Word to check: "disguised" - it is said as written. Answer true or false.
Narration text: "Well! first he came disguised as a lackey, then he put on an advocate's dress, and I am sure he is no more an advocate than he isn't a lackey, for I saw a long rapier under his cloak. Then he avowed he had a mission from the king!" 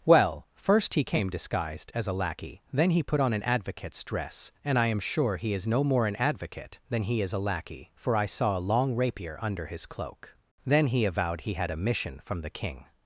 true